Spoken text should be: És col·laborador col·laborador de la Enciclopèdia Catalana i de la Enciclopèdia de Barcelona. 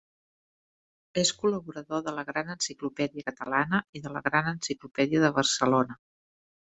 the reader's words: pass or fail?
fail